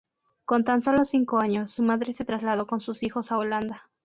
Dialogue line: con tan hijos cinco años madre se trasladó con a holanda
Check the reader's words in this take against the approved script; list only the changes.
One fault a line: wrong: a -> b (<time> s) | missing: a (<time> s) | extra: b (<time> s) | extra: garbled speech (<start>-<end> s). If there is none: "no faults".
wrong: hijos -> solo (0.8 s)
extra: su (1.7 s)
extra: sus hijos (2.8 s)